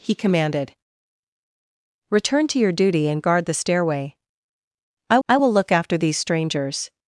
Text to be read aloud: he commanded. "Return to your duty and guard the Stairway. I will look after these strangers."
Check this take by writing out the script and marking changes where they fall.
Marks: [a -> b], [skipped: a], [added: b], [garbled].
he commanded. "Return to your duty and guard the Stairway. I [added: I] will look after these strangers."